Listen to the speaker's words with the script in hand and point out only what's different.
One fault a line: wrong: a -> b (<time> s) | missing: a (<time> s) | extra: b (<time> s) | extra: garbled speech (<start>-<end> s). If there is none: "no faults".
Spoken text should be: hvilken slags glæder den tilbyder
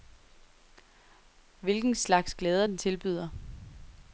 no faults